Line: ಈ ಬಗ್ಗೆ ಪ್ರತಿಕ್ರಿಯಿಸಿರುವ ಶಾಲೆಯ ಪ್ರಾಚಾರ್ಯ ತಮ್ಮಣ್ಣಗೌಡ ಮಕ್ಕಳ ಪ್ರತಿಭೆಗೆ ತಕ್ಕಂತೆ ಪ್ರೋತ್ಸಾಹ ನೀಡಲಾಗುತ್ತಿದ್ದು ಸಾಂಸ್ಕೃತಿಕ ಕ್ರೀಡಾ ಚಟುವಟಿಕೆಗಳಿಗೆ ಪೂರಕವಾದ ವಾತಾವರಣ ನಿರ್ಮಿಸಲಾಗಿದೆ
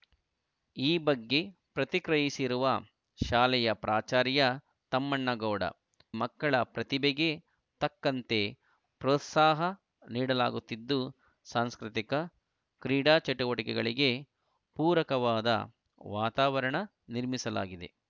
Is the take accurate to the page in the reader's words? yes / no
yes